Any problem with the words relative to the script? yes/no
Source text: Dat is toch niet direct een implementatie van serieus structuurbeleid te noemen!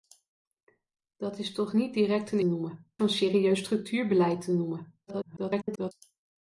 yes